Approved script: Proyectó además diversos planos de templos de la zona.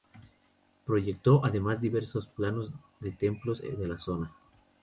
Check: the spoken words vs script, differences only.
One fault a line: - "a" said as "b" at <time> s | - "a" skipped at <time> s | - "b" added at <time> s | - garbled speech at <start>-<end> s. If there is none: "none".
none